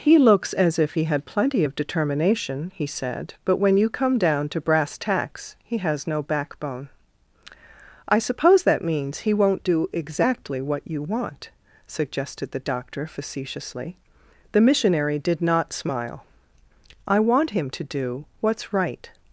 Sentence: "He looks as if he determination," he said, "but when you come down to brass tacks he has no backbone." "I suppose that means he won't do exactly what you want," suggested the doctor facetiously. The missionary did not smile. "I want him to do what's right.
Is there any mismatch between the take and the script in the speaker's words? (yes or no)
yes